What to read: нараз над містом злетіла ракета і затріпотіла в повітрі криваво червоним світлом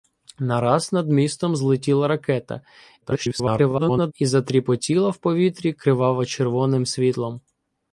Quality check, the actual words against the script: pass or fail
fail